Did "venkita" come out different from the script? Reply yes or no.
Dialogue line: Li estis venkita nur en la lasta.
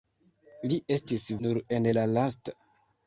yes